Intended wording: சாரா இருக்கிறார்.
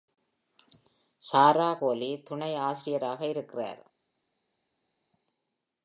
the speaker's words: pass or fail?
fail